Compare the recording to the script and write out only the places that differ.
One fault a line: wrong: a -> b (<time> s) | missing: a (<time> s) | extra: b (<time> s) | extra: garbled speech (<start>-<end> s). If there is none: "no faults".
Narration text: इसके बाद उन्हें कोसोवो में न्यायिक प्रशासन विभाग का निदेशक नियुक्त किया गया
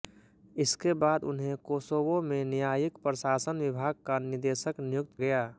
missing: किया (5.2 s)